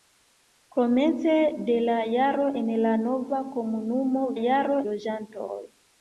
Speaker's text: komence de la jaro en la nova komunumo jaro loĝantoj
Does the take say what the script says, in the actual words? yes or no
yes